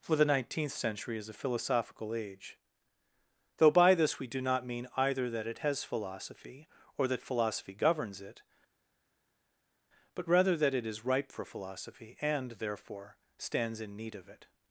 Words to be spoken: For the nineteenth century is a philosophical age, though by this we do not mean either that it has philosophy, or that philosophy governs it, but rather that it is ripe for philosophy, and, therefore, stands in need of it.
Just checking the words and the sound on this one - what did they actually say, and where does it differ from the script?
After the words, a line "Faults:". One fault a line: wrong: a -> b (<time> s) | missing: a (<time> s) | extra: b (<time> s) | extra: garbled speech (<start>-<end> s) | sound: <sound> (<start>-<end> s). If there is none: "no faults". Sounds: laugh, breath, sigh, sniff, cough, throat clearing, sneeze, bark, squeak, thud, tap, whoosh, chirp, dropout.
For the nineteenth century is a philosophical age, though by this we do not mean either that it has philosophy, or that philosophy governs it, but rather that it is ripe for philosophy, and, therefore, stands in need of it.
Faults:
no faults